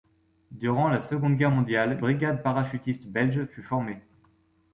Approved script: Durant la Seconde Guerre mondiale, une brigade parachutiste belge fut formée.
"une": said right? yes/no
no